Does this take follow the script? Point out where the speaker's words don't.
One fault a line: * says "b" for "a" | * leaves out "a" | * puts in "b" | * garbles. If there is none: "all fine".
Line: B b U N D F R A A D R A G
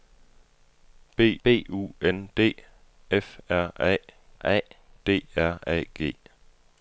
all fine